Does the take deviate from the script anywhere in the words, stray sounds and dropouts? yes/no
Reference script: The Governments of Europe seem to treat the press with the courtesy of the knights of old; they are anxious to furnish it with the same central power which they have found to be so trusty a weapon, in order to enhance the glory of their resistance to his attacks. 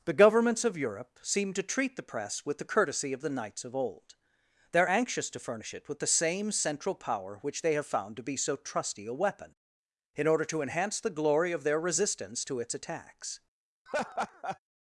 yes